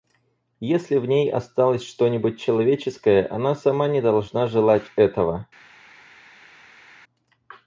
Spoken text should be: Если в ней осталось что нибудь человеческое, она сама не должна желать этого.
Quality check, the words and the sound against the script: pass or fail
pass